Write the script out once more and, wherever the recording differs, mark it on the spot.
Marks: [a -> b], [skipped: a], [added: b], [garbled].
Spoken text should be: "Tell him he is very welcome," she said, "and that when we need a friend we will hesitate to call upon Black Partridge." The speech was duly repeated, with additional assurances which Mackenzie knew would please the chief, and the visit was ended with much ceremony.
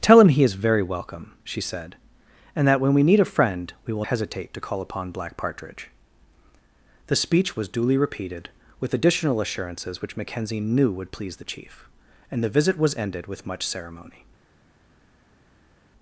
"Tell him he is very welcome," she said, "and that when we need a friend we will hesitate to call upon Black Partridge." The speech was duly repeated, with additional assurances which Mackenzie knew would please the chief, and the visit was ended with much ceremony.